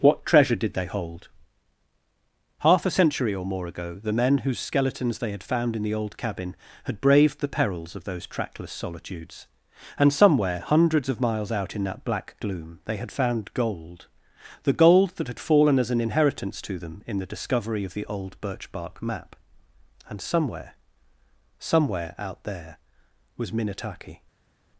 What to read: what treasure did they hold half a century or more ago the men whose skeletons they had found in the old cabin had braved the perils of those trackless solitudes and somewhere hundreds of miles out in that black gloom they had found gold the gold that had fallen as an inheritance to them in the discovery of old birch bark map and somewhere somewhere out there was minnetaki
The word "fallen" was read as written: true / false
true